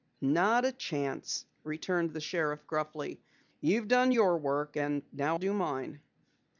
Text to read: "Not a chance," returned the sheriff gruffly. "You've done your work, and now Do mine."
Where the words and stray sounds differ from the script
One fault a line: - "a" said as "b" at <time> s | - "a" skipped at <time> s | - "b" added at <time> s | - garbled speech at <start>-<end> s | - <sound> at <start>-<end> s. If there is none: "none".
none